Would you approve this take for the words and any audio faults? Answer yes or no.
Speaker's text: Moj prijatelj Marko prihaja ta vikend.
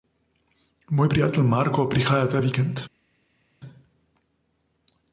yes